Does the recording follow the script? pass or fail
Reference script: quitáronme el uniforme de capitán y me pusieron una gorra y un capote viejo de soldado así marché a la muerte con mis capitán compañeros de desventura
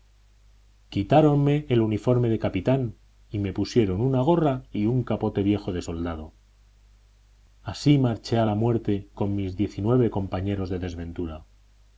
fail